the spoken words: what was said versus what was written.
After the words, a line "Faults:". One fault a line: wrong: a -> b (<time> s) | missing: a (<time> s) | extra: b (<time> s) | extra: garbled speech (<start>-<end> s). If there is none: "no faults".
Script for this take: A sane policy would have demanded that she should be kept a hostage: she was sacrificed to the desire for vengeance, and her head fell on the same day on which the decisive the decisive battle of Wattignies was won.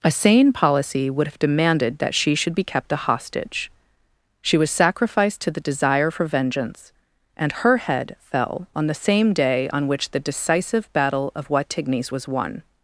A sane policy would have demanded that she should be kept a hostage: she was sacrificed to the desire for vengeance, and her head fell on the same day on which the decisive battle of Wattignies was won.
Faults:
missing: the decisive (10.9 s)